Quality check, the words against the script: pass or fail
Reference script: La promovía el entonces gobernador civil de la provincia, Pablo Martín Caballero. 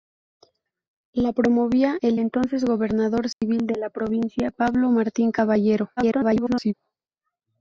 fail